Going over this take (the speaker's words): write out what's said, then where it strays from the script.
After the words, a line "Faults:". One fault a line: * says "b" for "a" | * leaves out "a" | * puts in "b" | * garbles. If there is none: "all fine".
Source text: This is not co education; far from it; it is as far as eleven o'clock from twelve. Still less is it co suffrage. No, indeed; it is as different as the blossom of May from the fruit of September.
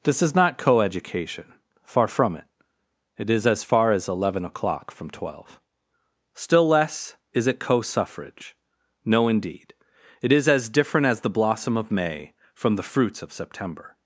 This is not co education; far from it; it is as far as eleven o'clock from twelve. Still less is it co suffrage. No, indeed; it is as different as the blossom of May from the fruits of September.
Faults:
* says "fruits" for "fruit"